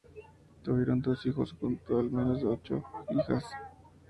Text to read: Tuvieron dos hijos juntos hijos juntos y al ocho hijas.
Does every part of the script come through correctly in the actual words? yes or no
no